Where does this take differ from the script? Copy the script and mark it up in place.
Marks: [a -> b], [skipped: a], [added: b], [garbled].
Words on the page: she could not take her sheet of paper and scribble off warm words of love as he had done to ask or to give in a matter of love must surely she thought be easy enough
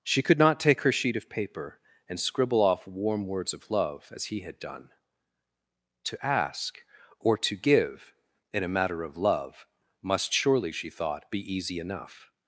she could not take her sheet of paper and scribble off warm words of love as he had done to ask or to give in a matter of love must surely she thought be easy enough